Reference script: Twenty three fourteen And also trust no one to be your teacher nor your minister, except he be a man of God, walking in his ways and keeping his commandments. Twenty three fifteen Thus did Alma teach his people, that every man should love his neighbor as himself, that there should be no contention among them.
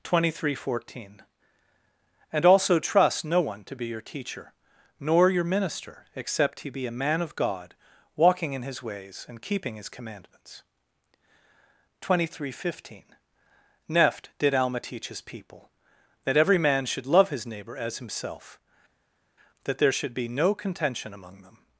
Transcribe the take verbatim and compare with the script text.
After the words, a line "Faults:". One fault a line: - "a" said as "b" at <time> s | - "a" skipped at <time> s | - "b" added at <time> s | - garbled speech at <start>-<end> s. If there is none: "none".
Twenty three fourteen And also trust no one to be your teacher nor your minister, except he be a man of God, walking in his ways and keeping his commandments. Twenty three fifteen Neft did Alma teach his people, that every man should love his neighbor as himself, that there should be no contention among them.
Faults:
- "Thus" said as "Neft" at 13.9 s